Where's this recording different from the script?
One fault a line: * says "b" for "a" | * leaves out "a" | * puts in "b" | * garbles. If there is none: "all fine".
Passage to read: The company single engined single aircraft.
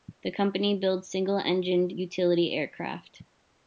* puts in "builds"
* says "utility" for "single"